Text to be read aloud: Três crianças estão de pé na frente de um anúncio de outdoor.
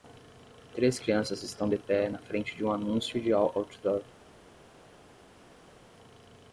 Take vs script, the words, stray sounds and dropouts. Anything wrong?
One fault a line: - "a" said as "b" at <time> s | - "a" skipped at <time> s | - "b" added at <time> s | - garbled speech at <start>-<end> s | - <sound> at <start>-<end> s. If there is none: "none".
none